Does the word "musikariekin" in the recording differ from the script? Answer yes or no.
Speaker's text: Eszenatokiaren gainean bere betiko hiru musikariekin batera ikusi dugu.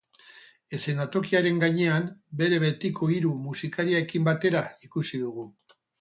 no